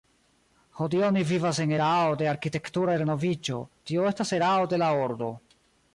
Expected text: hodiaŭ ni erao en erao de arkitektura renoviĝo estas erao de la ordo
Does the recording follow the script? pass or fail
fail